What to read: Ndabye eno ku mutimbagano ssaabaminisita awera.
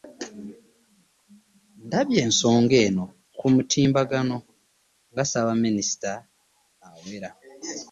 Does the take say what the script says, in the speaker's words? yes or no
no